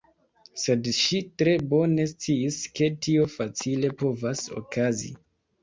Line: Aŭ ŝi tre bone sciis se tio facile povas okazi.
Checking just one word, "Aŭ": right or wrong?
wrong